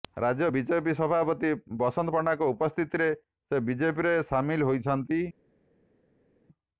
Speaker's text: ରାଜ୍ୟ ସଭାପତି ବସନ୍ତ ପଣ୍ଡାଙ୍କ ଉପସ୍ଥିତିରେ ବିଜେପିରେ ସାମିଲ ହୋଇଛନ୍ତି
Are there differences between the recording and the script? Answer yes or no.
yes